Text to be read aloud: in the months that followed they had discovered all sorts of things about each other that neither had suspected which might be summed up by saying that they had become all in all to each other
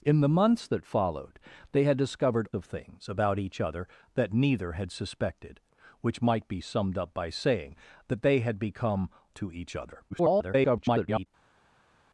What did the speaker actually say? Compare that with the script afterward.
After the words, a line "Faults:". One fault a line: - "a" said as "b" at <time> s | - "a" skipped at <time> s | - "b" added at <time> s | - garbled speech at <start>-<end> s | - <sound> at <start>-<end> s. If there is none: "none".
in the months that followed they had discovered of things about each other that neither had suspected which might be summed up by saying that they had become to each other [garbled]
Faults:
- "all sorts" skipped at 2.5 s
- "all in all" skipped at 9.1 s
- garbled speech at 10.1-11.3 s